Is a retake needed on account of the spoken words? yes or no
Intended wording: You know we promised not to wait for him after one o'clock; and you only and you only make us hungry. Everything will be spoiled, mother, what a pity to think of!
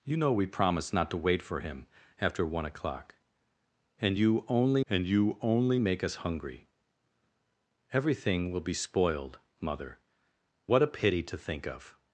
no